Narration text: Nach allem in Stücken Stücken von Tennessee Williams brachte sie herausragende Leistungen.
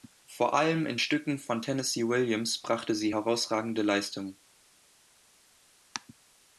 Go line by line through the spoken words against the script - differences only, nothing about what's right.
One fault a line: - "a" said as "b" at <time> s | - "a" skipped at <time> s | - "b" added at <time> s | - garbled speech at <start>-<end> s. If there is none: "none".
- "Nach" said as "Vor" at 0.2 s
- "Stücken" skipped at 1.4 s